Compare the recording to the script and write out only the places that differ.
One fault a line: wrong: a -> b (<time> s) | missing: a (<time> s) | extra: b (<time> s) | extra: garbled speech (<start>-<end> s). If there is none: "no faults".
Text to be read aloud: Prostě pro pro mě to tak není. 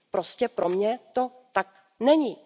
missing: pro (0.7 s)